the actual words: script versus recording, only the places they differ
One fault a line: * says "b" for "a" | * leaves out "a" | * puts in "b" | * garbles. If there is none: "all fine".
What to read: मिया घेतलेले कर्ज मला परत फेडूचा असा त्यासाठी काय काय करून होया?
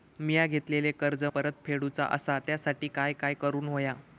* leaves out "मला"